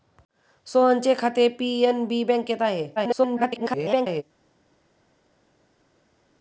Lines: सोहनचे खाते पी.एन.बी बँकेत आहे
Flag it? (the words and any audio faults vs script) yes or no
yes